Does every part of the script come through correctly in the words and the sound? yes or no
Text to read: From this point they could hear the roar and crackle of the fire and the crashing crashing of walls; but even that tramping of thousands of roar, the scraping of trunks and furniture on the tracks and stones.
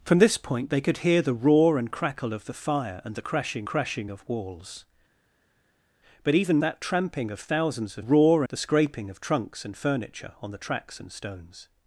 yes